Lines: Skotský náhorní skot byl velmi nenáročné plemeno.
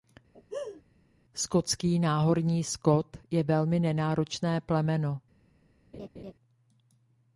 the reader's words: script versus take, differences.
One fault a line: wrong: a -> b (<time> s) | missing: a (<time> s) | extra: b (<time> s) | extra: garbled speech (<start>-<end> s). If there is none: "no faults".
wrong: byl -> je (3.3 s)